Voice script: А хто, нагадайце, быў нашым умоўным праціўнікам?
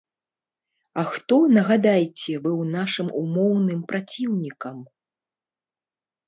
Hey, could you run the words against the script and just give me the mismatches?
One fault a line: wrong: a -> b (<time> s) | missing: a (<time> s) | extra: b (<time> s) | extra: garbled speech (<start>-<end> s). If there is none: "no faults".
no faults